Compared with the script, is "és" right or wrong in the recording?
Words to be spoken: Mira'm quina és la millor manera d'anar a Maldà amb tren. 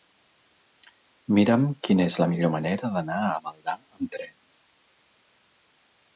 right